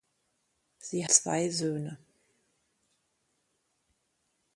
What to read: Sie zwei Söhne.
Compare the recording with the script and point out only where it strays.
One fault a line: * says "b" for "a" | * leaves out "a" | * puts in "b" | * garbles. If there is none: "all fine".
all fine